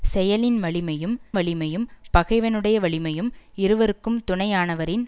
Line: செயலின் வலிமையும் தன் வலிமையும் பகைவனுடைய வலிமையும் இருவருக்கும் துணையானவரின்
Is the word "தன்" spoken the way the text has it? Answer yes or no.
no